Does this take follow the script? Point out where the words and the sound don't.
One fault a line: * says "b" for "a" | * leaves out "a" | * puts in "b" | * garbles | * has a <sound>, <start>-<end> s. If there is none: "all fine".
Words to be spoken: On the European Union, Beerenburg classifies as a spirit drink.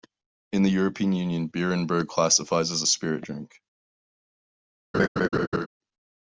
* says "In" for "On"
* has a laugh, 4.9-5.7 s